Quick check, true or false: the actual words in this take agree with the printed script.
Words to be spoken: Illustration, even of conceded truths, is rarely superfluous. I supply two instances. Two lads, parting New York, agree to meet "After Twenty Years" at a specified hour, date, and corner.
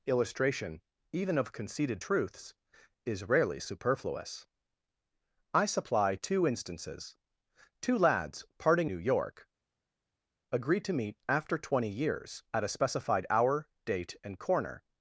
true